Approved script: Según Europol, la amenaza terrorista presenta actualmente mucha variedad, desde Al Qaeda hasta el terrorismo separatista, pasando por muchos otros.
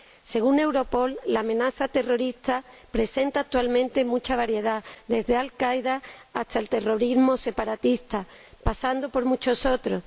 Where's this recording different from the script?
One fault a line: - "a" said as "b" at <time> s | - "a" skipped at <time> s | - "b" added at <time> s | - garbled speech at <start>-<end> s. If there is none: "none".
none